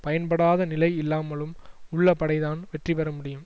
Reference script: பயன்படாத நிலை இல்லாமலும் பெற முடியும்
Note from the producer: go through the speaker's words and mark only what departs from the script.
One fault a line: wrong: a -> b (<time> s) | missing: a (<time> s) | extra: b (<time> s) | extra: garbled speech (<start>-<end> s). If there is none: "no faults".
extra: உள்ள படைதான் வெற்றி (1.9 s)